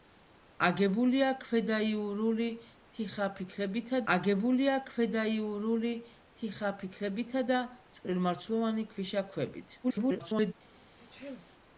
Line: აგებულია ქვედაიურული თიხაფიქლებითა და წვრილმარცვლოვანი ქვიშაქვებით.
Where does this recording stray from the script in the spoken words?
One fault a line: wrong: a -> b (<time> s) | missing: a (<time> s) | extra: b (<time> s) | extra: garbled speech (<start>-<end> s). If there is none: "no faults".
extra: აგებულია ქვედაიურული თიხაფიქლებითა (4.1 s)
extra: garbled speech (9.8-10.5 s)